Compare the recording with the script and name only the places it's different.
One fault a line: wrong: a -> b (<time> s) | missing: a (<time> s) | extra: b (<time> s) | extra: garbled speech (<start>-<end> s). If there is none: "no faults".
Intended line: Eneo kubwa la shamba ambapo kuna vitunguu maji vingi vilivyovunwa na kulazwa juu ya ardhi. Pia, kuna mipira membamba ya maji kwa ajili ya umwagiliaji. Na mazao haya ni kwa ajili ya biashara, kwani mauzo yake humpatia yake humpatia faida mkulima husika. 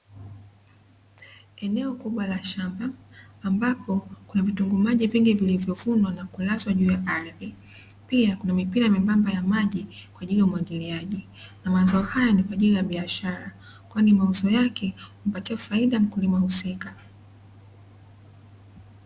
missing: yake humpatia (15.6 s)